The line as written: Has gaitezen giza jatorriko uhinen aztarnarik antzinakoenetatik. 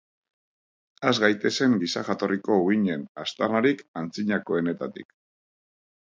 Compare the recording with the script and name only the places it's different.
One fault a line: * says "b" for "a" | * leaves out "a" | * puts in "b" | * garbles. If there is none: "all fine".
all fine